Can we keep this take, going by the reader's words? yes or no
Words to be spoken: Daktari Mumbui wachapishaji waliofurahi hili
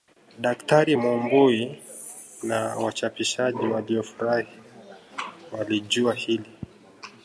no